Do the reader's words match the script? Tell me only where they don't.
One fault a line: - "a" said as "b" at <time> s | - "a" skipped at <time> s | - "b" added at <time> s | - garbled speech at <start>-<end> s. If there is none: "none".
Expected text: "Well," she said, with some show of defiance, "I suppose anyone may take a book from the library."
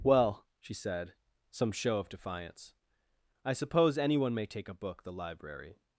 - "with" skipped at 1.1 s
- "from" skipped at 5.0 s